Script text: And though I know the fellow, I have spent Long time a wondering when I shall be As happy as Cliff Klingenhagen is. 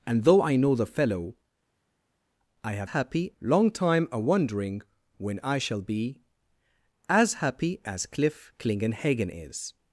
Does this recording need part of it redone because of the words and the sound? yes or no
yes